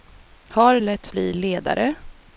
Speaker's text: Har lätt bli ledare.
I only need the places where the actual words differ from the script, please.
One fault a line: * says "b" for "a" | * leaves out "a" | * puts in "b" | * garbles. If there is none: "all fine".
all fine